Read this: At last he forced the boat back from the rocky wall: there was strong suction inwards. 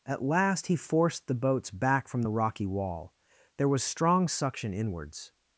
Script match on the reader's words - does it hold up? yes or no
no